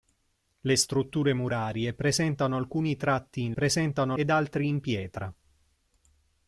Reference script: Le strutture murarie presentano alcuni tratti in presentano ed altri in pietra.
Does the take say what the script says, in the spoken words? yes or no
yes